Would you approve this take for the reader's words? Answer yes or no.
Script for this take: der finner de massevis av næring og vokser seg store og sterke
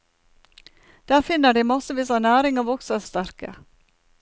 no